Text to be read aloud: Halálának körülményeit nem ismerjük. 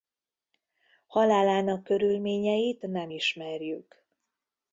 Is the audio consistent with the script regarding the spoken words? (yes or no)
yes